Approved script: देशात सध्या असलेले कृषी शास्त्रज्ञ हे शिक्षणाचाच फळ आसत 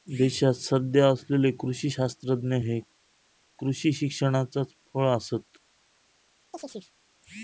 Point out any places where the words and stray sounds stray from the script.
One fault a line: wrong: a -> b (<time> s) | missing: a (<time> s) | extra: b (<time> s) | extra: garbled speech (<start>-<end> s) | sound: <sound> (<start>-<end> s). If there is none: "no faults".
extra: कृषी (3.6 s)
sound: chirp (6.5-6.9 s)